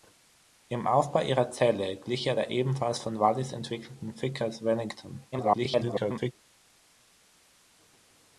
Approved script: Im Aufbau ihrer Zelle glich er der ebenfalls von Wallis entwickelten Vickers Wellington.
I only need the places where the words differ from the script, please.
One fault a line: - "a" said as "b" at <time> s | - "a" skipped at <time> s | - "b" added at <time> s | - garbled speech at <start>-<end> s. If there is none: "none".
- garbled speech at 5.3-6.3 s